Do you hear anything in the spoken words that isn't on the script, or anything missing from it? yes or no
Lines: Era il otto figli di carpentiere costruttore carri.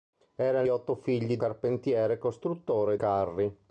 no